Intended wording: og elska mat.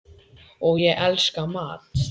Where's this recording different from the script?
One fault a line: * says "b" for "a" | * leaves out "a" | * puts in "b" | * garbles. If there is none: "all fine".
* puts in "ég"